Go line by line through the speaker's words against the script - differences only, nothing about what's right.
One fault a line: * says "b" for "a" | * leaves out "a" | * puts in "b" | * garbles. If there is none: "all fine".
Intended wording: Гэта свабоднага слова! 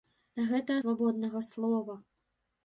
all fine